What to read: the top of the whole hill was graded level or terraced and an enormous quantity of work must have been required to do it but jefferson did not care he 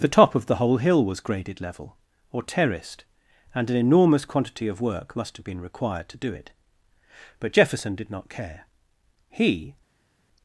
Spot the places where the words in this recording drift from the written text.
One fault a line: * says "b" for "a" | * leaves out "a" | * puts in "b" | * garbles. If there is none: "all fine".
all fine